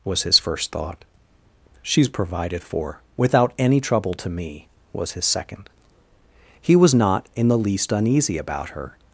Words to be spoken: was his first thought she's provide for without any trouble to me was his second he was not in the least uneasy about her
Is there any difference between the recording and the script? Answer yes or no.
yes